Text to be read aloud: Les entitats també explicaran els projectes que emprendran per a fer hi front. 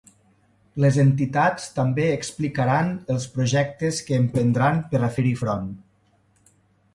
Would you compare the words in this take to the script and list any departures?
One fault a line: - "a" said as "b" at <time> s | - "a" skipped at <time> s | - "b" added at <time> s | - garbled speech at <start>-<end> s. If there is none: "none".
none